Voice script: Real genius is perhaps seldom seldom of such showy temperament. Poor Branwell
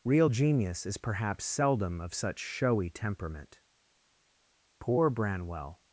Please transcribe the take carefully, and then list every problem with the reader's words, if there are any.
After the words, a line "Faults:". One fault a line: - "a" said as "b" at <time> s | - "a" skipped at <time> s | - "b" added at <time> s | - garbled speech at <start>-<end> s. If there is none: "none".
Real genius is perhaps seldom of such showy temperament. Poor Branwell
Faults:
- "seldom" skipped at 2.0 s